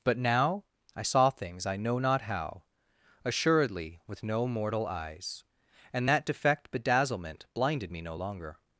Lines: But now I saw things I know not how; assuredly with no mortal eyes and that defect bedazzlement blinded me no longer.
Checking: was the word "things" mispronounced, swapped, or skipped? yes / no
no